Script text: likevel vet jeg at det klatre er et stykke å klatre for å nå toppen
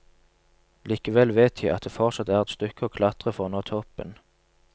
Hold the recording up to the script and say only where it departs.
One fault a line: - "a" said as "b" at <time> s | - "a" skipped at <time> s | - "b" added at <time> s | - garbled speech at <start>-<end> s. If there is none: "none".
- "klatre" said as "fortsatt" at 1.9 s